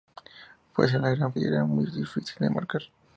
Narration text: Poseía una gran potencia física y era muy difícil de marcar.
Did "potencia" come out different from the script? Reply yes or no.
yes